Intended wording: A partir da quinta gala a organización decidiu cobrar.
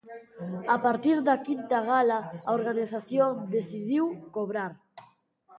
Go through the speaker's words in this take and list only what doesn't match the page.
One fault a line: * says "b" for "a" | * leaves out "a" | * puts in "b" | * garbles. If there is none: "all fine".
all fine